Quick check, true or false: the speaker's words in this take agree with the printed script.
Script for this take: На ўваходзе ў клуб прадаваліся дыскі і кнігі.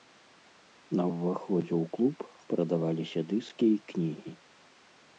true